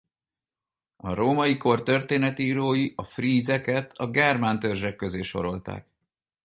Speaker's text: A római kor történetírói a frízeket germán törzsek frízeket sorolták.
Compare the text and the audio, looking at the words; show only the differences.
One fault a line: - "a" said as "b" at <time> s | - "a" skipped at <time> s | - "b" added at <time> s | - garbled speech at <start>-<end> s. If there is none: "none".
- "a" added at 3.9 s
- "frízeket" said as "közé" at 5.0 s